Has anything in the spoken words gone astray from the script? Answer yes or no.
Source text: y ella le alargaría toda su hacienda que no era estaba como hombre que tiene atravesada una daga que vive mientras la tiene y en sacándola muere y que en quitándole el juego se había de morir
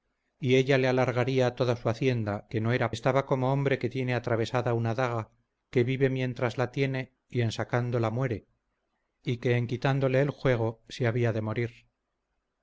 no